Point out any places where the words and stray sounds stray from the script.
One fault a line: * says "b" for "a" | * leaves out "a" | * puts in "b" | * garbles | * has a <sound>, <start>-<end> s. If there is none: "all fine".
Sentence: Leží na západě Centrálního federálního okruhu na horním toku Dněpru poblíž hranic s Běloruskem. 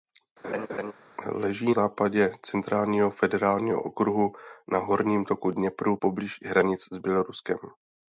* has a laugh, 0.4-0.9 s
* leaves out "na"